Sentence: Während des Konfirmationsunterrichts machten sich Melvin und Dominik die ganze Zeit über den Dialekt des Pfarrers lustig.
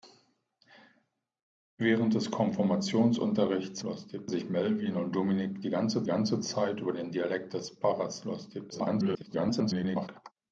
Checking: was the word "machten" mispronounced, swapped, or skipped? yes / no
yes